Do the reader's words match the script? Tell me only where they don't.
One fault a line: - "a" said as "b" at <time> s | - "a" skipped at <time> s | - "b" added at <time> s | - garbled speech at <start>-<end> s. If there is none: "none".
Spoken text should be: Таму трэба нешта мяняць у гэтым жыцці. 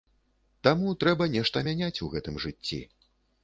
none